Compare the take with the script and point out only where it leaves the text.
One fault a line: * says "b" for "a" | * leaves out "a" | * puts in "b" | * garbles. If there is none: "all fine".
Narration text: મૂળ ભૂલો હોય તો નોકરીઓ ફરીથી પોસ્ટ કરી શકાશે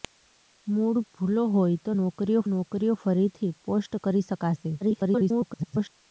* puts in "નોકરીઓ"
* garbles